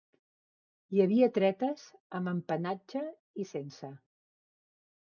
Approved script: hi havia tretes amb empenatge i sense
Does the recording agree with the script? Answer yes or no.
yes